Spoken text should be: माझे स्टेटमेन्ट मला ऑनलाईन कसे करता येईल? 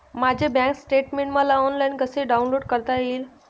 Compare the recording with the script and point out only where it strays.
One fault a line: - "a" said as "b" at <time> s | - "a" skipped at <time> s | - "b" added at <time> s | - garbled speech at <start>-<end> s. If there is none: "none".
- "बँक" added at 0.5 s
- "डाउनलोड" added at 2.2 s